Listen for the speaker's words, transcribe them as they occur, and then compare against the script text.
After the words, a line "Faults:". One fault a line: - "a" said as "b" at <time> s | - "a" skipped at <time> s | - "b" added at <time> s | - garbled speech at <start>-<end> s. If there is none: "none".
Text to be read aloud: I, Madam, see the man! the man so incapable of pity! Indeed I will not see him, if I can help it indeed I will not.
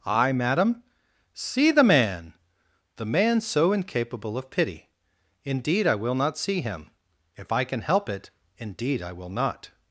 I, Madam, see the man! the man so incapable of pity! Indeed I will not see him, if I can help it indeed I will not.
Faults:
none